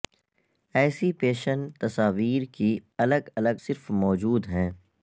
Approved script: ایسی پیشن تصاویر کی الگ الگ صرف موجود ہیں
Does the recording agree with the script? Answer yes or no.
yes